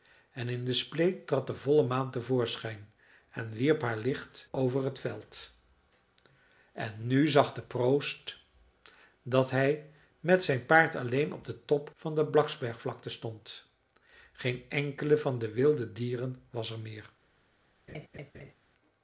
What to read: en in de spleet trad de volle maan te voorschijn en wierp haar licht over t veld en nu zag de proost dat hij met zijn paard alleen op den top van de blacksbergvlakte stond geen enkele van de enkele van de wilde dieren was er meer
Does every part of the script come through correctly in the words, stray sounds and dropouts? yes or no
no